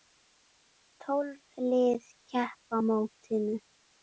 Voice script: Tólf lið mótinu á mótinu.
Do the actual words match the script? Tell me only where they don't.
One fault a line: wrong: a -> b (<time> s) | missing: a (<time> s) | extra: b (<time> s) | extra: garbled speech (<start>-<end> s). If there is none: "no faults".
wrong: mótinu -> keppa (2.3 s)